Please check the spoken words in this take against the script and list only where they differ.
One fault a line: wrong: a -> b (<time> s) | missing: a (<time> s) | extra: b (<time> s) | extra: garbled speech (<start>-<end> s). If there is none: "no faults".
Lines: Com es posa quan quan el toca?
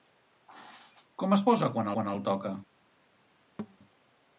no faults